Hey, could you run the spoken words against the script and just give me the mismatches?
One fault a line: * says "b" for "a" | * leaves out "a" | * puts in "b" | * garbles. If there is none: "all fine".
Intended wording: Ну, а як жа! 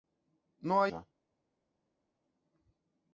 * leaves out "як"